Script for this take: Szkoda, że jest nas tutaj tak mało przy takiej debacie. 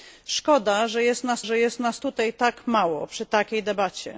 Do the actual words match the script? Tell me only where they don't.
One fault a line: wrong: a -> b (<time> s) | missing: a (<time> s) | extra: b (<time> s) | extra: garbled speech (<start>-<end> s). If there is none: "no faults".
extra: że jest nas (1.4 s)